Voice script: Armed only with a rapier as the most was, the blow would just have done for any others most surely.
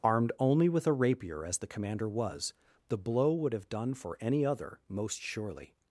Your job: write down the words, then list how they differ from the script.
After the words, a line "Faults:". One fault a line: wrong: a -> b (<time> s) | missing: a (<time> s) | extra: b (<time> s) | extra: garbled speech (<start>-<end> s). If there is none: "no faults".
Armed only with a rapier as the commander was, the blow would have done for any other most surely.
Faults:
wrong: most -> commander (1.7 s)
missing: just (3.5 s)
wrong: others -> other (4.5 s)